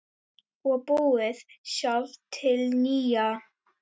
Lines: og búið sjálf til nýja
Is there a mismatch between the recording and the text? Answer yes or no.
no